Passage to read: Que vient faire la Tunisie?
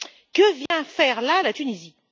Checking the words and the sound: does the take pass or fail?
fail